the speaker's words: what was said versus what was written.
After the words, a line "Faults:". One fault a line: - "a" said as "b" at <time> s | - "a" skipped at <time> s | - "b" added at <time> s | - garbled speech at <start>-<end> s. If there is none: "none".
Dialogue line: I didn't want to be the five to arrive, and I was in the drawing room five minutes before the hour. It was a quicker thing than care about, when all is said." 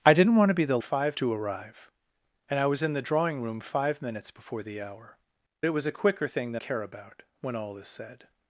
I didn't want to be the five to arrive, and I was in the drawing room five minutes before the hour. It was a quicker thing than care about, when all is said."
Faults:
none